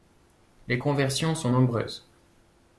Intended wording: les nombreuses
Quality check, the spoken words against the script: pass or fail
fail